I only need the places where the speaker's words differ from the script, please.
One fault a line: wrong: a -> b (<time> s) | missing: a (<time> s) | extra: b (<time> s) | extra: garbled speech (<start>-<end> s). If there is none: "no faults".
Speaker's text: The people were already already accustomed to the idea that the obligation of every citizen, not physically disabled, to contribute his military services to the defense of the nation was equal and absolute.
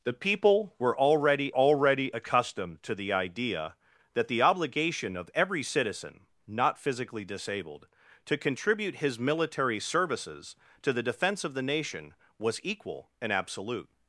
no faults